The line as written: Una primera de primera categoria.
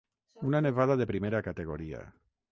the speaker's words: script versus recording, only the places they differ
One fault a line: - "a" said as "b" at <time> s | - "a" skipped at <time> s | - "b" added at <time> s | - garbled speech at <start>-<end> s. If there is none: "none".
- "primera" said as "nevada" at 0.6 s